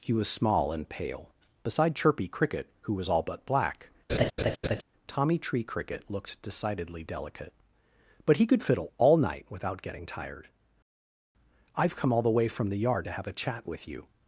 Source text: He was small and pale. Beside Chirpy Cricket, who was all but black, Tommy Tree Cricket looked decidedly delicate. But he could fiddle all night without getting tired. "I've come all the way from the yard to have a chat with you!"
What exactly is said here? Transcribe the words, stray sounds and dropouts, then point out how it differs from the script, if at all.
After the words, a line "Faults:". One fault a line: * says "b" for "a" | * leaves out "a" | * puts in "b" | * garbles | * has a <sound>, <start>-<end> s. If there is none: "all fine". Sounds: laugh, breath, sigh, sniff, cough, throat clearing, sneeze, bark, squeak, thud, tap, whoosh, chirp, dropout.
He was small and pale. Beside Chirpy Cricket, who was all but black, Tommy Tree Cricket looked decidedly delicate. But he could fiddle all night without getting tired. "I've come all the way from the yard to have a chat with you!"
Faults:
* has a laugh, 4.1-4.8 s